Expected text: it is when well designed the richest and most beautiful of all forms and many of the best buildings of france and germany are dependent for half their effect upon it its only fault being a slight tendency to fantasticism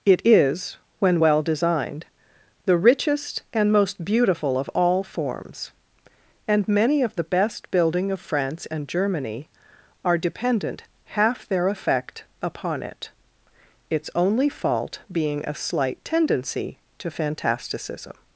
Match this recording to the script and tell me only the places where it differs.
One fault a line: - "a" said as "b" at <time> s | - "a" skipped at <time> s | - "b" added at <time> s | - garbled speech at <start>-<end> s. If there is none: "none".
- "buildings" said as "building" at 7.7 s
- "for" skipped at 10.8 s